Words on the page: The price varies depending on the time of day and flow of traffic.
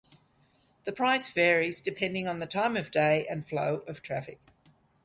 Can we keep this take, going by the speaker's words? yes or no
yes